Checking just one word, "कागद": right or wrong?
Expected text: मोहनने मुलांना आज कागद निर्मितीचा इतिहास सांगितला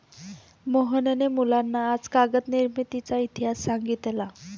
right